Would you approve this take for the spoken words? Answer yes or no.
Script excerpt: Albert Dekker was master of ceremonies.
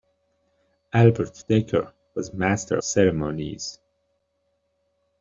no